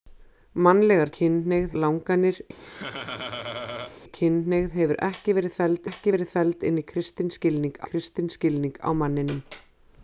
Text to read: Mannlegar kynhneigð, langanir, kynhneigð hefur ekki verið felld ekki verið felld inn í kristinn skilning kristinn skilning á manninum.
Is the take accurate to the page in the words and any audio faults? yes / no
no